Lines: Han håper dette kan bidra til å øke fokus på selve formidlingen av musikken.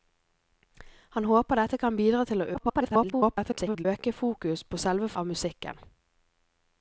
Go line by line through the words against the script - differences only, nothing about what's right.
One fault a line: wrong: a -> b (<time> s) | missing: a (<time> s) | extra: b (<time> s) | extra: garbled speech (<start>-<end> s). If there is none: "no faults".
extra: garbled speech (2.5-3.9 s)
missing: formidlingen (5.1 s)